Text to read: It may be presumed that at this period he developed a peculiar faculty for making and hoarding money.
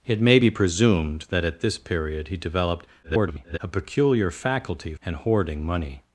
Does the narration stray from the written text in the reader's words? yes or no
yes